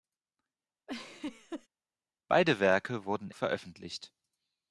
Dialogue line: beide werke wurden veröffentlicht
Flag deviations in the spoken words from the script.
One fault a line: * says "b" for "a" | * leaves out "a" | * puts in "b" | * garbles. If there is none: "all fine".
all fine